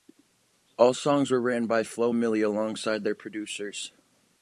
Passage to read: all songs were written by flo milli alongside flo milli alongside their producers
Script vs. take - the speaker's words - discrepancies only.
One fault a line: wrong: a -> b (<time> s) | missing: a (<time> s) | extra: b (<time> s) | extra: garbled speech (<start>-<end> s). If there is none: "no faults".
missing: flo milli alongside (3.0 s)